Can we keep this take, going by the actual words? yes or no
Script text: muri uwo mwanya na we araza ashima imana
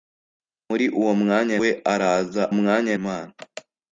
no